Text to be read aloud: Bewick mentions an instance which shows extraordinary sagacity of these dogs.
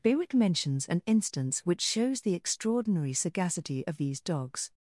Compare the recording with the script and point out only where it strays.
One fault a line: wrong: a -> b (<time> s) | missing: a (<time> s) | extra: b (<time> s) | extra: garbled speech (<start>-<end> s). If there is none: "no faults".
extra: the (2.2 s)